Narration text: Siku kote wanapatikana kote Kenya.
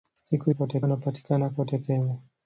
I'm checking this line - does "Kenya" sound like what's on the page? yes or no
yes